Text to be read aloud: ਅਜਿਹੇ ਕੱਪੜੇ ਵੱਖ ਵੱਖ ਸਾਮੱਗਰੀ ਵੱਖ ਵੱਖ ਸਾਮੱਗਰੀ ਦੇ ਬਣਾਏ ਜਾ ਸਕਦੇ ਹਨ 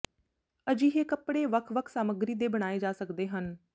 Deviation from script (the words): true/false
true